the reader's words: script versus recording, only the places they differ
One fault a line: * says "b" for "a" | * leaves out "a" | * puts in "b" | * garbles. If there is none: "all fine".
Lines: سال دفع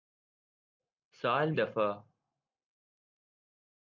all fine